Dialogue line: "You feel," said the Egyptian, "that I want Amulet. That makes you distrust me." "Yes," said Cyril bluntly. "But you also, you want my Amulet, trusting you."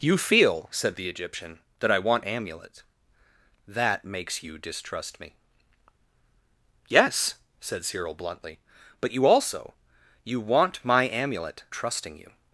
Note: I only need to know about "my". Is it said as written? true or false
true